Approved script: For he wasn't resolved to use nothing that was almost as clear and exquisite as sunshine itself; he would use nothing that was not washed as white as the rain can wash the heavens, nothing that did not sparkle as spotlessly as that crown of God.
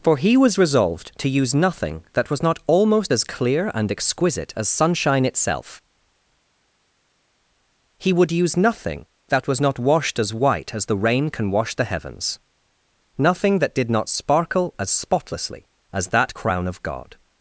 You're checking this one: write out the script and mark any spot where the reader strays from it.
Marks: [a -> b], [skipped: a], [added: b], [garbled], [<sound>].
For he [wasn't -> was] resolved to use nothing that was [added: not] almost as clear and exquisite as sunshine itself; he would use nothing that was not washed as white as the rain can wash the heavens, nothing that did not sparkle as spotlessly as that crown of God.